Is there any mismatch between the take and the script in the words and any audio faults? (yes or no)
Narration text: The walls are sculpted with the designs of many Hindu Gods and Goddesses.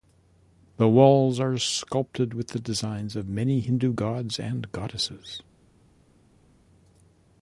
no